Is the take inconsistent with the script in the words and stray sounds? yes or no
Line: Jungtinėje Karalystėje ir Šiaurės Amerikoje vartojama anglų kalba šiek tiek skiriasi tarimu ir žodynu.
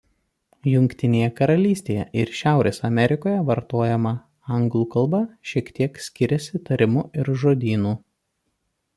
no